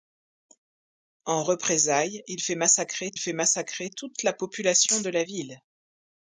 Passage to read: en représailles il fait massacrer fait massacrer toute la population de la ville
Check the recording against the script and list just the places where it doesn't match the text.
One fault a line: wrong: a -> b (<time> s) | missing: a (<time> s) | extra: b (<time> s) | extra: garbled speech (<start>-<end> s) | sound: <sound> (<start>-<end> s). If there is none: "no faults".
no faults